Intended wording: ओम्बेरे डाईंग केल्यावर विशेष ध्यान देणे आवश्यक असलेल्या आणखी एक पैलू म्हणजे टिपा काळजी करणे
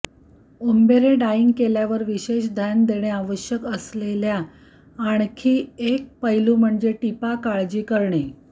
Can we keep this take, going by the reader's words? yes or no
yes